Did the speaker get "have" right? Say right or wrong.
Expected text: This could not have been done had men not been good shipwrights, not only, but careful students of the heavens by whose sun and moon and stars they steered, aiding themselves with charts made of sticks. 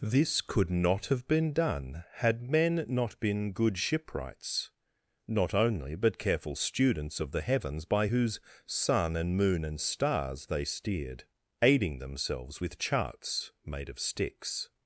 right